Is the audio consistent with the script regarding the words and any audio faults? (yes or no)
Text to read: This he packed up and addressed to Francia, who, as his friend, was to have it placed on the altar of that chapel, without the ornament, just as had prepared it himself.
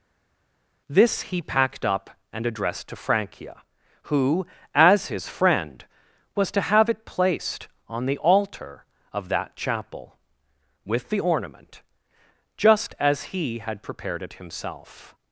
no